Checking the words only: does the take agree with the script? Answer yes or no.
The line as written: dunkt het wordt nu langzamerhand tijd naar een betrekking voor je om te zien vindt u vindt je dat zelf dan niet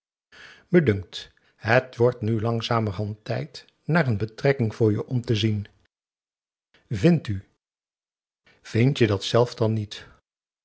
yes